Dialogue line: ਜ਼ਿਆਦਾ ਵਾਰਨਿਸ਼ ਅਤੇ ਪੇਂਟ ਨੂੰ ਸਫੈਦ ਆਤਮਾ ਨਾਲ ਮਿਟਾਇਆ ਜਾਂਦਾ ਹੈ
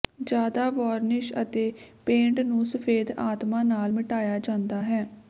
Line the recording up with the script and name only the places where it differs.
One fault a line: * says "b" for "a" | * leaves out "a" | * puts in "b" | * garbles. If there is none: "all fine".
all fine